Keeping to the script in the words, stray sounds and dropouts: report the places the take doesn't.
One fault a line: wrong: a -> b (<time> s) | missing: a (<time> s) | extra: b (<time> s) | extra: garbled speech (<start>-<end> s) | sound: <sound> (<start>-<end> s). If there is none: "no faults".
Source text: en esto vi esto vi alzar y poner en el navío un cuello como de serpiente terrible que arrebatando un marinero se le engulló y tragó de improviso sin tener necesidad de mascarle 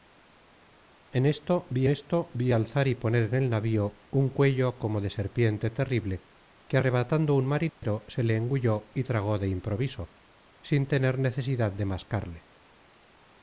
sound: dropout (7.7-7.8 s)